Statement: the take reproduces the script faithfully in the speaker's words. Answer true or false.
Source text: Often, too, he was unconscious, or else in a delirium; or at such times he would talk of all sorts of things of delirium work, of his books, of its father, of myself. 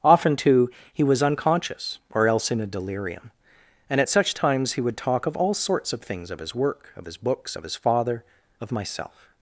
false